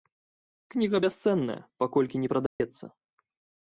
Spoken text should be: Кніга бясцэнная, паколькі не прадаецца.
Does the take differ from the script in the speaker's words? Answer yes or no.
no